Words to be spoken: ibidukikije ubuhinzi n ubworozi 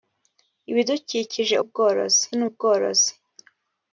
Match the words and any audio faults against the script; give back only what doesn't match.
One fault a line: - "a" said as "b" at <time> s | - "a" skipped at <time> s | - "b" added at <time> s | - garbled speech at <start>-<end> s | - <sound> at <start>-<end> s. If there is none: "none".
- "ubuhinzi" said as "ubworozi" at 1.6 s